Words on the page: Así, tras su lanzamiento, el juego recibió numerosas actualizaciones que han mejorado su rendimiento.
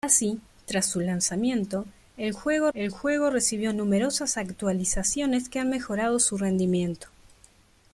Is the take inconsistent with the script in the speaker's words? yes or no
yes